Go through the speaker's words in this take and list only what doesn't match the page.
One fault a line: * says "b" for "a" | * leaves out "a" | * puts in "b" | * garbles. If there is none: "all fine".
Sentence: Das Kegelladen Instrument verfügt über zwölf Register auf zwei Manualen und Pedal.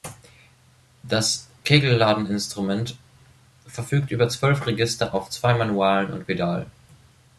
all fine